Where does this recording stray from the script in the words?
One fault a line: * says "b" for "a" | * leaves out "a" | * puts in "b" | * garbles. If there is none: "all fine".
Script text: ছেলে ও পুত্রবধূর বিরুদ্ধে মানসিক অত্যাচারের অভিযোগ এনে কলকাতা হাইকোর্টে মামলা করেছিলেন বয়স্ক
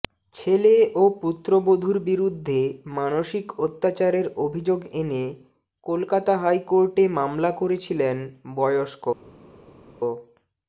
all fine